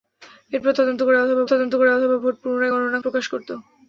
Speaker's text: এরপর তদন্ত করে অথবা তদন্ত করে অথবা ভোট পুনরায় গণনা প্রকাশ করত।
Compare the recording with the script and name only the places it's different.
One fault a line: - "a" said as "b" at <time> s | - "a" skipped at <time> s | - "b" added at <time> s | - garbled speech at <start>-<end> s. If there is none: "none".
none